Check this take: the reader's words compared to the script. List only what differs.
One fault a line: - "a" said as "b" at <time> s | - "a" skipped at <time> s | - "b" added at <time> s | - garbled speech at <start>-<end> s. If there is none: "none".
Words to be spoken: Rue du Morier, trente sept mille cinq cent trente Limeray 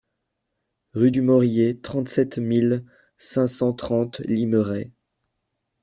none